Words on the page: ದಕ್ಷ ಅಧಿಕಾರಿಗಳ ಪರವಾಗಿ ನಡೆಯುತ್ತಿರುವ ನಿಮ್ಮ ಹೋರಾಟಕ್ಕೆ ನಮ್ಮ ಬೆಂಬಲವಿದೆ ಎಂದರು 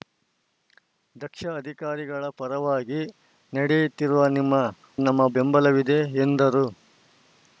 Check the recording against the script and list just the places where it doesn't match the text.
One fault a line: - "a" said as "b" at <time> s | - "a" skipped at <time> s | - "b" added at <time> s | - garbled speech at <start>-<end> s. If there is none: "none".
- "ಹೋರಾಟಕ್ಕೆ" skipped at 4.5 s